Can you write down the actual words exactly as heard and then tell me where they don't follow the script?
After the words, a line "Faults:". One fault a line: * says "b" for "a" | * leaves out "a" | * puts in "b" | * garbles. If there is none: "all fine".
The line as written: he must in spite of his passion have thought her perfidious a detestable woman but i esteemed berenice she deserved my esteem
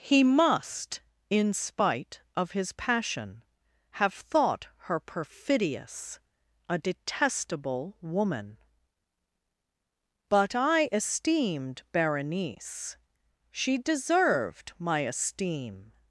he must in spite of his passion have thought her perfidious a detestable woman but i esteemed berenice she deserved my esteem
Faults:
all fine